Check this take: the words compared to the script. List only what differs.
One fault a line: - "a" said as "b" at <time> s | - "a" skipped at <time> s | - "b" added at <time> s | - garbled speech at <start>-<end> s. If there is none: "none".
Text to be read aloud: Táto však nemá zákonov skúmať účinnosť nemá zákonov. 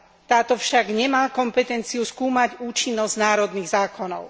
- "zákonov" said as "kompetenciu" at 1.3 s
- "nemá" said as "národných" at 3.2 s